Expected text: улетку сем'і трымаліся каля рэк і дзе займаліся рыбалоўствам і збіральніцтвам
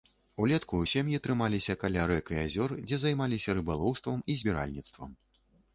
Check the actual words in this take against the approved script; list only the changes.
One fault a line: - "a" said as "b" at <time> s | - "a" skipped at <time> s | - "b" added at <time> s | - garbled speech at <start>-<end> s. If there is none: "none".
- "азёр" added at 2.4 s